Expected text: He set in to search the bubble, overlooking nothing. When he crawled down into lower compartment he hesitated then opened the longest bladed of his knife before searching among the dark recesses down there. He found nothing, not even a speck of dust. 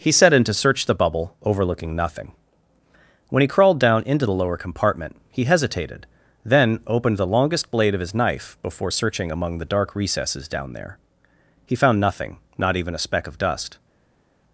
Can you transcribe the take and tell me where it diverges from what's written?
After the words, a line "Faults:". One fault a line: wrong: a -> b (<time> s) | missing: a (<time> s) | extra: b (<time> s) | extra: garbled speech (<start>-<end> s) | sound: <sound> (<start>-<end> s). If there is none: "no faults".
He set in to search the bubble, overlooking nothing. When he crawled down into the lower compartment he hesitated then opened the longest blade of his knife before searching among the dark recesses down there. He found nothing, not even a speck of dust.
Faults:
extra: the (4.2 s)
wrong: bladed -> blade (7.7 s)